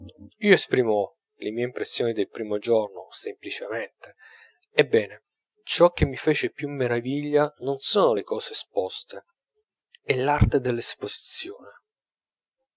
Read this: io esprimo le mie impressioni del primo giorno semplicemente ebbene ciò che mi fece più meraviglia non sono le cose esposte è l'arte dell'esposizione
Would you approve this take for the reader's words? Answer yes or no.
yes